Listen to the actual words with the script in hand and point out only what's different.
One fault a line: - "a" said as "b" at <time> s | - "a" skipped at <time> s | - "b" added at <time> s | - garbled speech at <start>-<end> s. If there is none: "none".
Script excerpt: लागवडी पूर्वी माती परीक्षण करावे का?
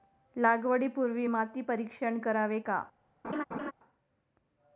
none